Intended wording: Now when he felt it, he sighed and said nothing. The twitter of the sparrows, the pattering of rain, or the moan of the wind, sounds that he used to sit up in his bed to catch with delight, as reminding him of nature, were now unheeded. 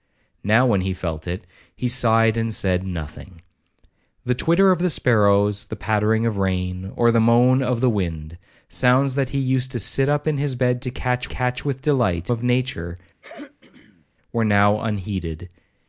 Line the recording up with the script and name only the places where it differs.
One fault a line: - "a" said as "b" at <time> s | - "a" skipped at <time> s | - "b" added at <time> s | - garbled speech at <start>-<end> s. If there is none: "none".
- "catch" added at 11.3 s
- "as reminding him" skipped at 12.3 s